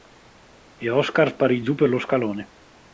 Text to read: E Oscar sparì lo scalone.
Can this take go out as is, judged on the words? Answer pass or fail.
fail